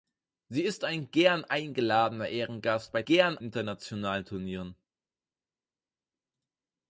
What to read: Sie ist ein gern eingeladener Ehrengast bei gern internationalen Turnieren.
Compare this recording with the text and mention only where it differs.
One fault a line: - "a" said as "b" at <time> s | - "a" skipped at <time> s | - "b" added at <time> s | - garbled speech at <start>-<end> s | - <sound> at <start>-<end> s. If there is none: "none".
none